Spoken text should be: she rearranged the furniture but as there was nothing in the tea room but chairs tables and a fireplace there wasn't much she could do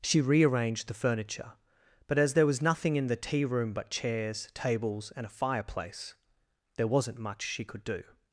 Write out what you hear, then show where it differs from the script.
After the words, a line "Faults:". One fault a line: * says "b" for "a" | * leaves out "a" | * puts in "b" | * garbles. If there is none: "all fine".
she rearranged the furniture but as there was nothing in the tea room but chairs tables and a fireplace there wasn't much she could do
Faults:
all fine